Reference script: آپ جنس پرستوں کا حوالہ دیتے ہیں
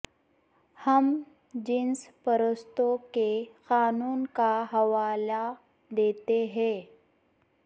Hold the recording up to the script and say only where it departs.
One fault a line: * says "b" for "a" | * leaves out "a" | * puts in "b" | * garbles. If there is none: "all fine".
* says "ہم" for "آپ"
* puts in "کے قانون"